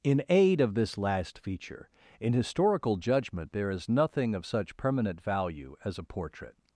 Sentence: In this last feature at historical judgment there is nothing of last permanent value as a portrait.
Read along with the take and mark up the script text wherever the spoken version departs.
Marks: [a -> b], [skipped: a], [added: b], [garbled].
In [added: aid of] this last feature [at -> in] historical judgment there is nothing of [last -> such] permanent value as a portrait.